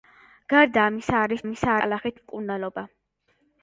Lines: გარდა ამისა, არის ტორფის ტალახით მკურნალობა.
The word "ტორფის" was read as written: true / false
false